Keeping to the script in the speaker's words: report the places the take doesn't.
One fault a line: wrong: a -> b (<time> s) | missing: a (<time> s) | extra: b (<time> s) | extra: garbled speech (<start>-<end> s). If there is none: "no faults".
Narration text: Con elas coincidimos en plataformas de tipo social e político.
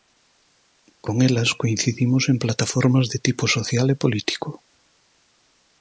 no faults